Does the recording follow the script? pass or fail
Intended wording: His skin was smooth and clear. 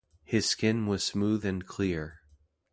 pass